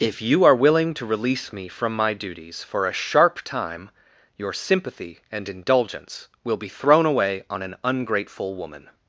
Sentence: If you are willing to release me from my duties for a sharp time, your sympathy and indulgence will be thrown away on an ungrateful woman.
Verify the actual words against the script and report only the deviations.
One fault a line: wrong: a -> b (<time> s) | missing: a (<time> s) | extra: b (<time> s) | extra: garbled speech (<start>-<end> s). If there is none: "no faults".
no faults